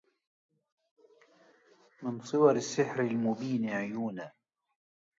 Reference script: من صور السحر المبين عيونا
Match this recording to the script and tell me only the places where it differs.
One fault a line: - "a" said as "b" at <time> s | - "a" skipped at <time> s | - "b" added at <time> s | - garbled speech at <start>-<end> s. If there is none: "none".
none